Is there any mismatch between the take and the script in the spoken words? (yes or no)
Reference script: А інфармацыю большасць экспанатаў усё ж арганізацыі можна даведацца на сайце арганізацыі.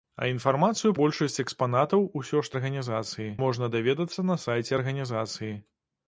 no